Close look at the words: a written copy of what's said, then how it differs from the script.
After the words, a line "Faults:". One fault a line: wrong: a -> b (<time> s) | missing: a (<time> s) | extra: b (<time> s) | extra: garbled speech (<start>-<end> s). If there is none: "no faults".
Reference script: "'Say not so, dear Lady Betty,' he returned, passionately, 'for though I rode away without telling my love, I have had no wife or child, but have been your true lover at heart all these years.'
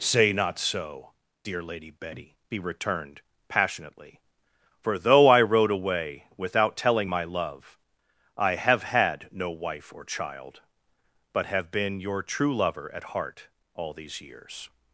"'Say not so, dear Lady Betty,' he returned, passionately, 'for though I rode away without telling my love, I have had no wife or child, but have been your true lover at heart all these years.'
Faults:
no faults